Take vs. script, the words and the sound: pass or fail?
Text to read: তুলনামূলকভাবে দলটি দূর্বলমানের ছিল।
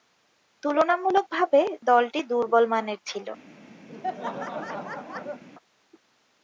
fail